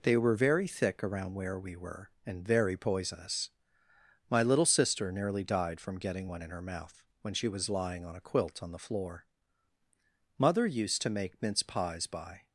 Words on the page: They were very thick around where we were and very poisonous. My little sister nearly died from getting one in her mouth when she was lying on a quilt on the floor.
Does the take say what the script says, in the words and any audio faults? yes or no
no